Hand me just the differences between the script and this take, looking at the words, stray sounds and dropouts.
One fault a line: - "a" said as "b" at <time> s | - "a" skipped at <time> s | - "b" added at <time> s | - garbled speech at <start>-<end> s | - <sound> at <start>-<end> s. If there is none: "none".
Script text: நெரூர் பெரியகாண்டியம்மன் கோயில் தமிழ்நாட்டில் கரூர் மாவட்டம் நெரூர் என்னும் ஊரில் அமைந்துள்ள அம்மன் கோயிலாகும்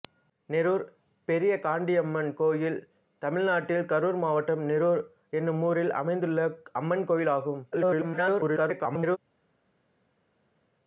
- garbled speech at 7.7-9.2 s